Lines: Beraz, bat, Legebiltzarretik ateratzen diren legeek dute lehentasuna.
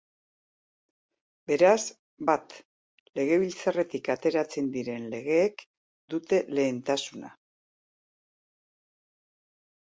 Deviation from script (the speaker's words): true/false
false